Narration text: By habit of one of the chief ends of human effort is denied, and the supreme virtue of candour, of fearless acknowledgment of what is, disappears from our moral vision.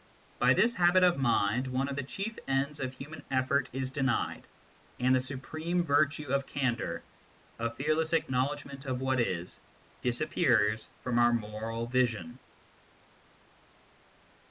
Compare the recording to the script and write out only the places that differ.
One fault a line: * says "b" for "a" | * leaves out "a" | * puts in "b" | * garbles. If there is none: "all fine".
* puts in "this"
* puts in "mind"